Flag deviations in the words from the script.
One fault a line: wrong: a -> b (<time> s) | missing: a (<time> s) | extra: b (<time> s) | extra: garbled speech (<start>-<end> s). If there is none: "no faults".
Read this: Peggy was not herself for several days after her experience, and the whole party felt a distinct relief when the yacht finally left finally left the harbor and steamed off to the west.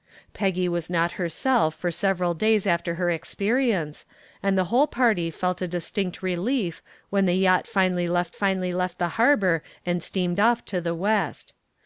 no faults